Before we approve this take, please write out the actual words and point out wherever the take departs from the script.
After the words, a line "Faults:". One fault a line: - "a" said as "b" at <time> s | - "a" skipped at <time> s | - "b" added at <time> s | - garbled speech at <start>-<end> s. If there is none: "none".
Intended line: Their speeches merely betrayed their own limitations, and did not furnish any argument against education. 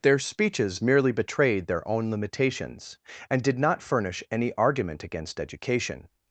Their speeches merely betrayed their own limitations, and did not furnish any argument against education.
Faults:
none